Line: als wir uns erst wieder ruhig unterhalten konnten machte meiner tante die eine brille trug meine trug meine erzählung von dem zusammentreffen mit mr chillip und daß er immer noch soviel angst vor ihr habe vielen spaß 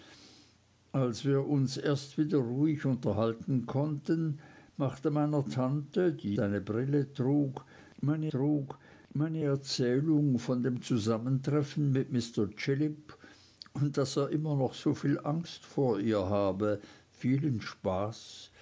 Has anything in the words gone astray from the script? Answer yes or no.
no